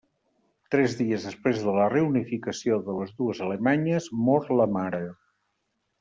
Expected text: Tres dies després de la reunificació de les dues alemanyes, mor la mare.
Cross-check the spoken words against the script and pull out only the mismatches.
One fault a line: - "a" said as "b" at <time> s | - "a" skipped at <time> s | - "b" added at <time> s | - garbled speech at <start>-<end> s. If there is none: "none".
none